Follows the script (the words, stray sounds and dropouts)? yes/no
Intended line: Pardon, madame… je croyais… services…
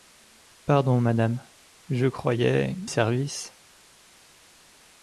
yes